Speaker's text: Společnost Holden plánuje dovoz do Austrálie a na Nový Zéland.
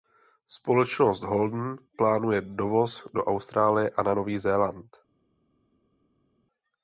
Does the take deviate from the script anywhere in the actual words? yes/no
no